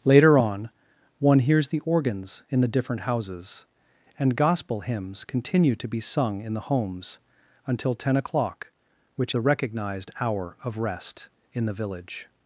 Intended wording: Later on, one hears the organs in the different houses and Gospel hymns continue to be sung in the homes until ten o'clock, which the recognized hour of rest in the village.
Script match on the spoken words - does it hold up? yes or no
yes